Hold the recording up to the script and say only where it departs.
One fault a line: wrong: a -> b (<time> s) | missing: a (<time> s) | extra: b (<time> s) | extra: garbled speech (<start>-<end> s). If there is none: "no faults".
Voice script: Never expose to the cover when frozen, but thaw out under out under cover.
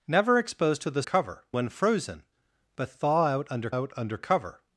no faults